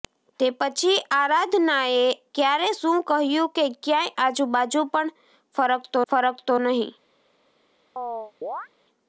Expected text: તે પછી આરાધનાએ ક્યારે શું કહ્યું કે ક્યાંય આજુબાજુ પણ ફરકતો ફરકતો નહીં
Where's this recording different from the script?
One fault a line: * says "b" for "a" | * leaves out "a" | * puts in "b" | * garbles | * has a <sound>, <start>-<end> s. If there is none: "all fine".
* has a chirp, 8.0-8.7 s